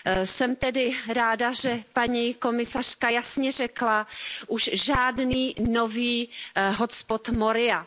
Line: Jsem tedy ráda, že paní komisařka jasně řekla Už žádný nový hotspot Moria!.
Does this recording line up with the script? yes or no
yes